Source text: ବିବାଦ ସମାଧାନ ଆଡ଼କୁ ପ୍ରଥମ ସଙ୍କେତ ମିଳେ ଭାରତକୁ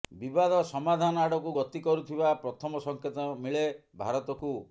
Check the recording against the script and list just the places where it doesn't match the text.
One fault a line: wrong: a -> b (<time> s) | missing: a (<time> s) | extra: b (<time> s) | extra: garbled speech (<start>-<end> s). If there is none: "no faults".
extra: ଗତି କରୁଥିବା (1.6 s)